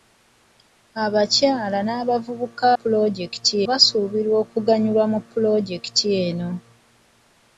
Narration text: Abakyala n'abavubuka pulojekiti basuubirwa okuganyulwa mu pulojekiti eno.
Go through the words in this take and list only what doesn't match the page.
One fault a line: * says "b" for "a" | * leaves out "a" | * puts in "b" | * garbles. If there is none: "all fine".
all fine